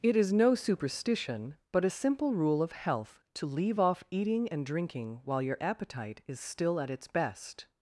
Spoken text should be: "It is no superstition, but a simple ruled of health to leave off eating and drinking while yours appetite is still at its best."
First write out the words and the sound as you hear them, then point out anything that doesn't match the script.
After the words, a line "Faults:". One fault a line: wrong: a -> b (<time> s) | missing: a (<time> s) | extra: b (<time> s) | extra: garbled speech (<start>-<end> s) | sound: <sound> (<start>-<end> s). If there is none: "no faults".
"It is no superstition, but a simple rule of health to leave off eating and drinking while your appetite is still at its best."
Faults:
wrong: ruled -> rule (2.3 s)
wrong: yours -> your (5.4 s)